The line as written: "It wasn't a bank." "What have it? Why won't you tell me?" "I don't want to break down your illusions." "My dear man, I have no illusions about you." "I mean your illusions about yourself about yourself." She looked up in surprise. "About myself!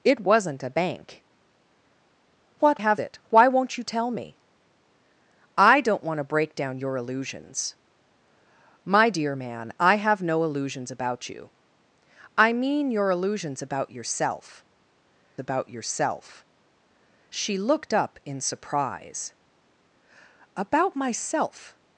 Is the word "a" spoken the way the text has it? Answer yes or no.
yes